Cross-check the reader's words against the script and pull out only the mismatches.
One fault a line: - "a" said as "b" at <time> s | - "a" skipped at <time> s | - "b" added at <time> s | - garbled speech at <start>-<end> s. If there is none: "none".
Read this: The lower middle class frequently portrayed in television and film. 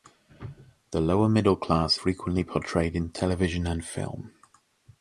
none